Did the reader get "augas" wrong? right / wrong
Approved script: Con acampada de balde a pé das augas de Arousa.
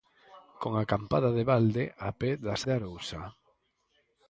wrong